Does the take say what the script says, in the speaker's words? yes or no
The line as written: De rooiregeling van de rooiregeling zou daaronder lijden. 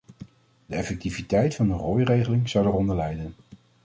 no